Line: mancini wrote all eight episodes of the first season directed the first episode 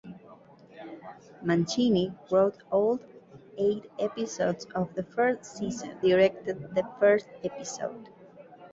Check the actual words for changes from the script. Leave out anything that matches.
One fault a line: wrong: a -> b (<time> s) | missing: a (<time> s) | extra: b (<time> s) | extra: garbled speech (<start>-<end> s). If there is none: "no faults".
no faults